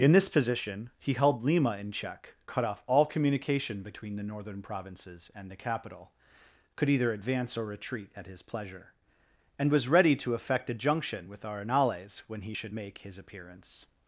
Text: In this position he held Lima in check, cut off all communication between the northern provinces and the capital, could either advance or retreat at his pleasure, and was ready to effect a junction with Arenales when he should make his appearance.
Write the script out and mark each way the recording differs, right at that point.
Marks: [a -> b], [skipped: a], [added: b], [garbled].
In this position he held Lima in check, cut off all communication between the northern provinces and the capital, could either advance or retreat at his pleasure, and was ready to effect a junction with Arenales when he should make his appearance.